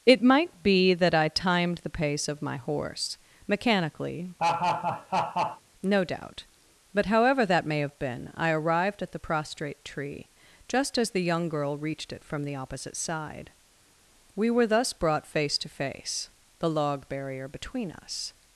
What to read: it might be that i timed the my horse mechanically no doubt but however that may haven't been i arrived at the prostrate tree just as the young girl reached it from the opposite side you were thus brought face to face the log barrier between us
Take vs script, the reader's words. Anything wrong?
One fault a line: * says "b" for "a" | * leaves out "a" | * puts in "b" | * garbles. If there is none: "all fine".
* puts in "pace of"
* says "have" for "haven't"
* says "we" for "you"